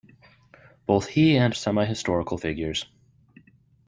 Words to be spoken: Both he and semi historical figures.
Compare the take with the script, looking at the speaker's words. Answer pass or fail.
pass